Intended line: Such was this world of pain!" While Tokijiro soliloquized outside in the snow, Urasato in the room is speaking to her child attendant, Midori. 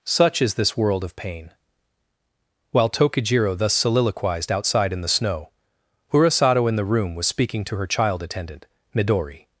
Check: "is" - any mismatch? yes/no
yes